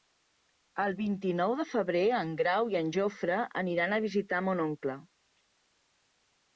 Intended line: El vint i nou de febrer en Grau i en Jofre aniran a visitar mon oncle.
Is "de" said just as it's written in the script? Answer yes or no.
yes